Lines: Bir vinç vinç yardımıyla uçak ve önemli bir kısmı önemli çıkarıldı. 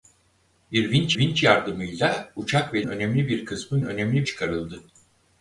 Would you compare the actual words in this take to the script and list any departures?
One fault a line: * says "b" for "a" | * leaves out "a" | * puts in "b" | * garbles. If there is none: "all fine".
all fine